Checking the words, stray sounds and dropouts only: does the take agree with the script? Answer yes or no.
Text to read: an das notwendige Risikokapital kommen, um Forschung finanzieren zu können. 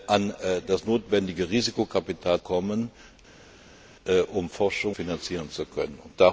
yes